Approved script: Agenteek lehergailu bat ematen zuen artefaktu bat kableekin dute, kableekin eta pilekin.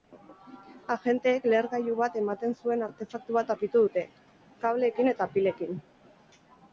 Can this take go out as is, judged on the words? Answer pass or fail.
fail